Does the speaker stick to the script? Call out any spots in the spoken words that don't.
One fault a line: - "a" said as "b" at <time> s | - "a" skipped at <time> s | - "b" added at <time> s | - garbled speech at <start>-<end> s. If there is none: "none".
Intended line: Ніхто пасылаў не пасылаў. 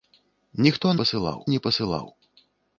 none